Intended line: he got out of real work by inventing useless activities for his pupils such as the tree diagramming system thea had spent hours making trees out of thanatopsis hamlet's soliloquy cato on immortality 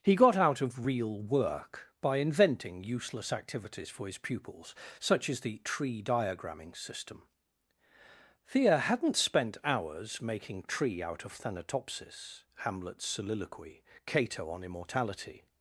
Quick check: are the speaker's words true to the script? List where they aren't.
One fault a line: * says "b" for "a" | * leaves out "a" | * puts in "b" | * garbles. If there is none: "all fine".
* says "hadn't" for "had"
* says "tree" for "trees"